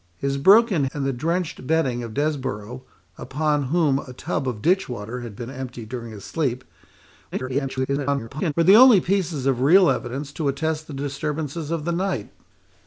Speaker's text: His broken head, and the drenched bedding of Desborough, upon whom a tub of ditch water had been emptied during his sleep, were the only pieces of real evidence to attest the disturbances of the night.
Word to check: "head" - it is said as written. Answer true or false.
false